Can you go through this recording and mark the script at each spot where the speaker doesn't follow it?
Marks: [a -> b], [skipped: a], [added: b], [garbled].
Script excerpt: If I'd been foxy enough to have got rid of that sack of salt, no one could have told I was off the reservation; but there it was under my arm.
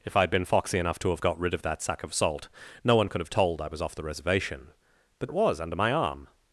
If I'd been foxy enough to have got rid of that sack of salt, no one could have told I was off the reservation; but [skipped: there] it was under my arm.